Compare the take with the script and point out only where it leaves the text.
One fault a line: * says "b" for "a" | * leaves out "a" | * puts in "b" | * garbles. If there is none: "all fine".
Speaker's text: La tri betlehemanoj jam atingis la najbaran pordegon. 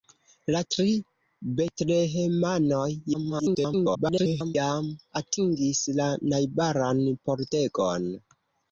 * garbles